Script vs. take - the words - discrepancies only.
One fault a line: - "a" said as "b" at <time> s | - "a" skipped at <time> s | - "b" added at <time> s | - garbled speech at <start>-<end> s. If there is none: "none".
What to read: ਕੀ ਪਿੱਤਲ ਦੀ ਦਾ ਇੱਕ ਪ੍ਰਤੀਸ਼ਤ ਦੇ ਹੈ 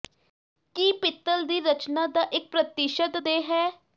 - "ਰਚਨਾ" added at 1.6 s